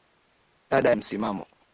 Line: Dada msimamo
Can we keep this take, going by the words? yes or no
yes